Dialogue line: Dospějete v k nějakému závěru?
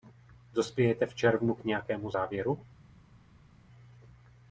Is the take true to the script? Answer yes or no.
no